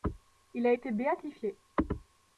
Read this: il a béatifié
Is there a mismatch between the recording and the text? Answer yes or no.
yes